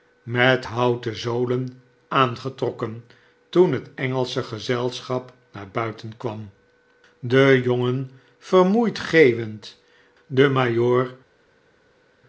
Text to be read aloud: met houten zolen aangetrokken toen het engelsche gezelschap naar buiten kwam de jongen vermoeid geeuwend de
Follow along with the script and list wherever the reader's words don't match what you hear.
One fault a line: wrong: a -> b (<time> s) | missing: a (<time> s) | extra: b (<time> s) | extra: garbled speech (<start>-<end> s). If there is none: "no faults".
no faults